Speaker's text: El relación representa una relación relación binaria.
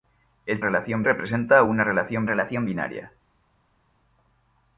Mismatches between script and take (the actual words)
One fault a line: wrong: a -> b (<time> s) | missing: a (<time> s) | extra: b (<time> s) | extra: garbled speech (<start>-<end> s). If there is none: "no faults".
no faults